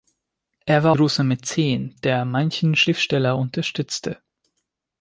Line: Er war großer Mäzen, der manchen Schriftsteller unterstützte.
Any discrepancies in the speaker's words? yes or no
no